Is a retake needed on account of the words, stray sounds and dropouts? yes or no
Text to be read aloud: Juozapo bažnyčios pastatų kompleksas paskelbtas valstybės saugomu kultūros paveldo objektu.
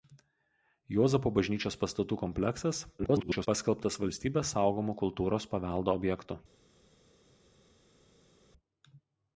yes